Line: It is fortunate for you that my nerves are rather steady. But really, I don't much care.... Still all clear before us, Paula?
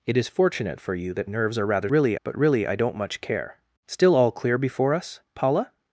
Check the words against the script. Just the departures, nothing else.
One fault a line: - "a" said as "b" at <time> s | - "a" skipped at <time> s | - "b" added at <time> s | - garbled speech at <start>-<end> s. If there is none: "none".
- "my" skipped at 1.3 s
- "steady" said as "really" at 1.9 s